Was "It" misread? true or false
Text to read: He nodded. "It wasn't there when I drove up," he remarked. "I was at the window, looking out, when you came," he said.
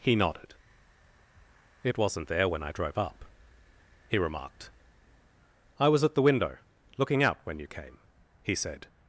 false